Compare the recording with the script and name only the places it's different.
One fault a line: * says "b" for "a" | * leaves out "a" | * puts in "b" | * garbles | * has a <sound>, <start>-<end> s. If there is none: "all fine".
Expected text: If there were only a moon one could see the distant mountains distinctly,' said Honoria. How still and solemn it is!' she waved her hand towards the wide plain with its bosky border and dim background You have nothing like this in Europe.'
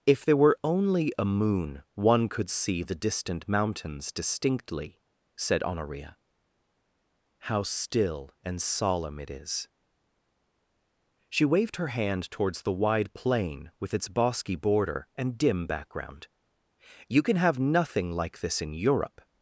* puts in "can"